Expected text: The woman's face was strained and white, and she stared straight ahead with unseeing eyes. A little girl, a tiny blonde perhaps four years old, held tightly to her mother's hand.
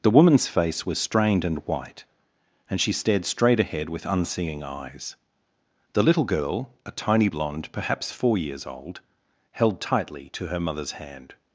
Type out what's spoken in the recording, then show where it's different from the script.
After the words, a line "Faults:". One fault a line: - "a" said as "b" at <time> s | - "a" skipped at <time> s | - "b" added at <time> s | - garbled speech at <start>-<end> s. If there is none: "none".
The woman's face was strained and white, and she stared straight ahead with unseeing eyes. The little girl, a tiny blonde perhaps four years old, held tightly to her mother's hand.
Faults:
- "A" said as "The" at 5.9 s